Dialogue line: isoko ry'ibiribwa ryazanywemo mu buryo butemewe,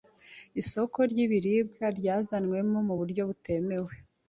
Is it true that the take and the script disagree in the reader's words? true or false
false